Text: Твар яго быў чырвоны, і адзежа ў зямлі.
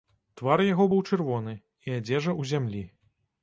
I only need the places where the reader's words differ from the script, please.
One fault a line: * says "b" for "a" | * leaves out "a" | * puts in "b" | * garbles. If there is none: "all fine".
all fine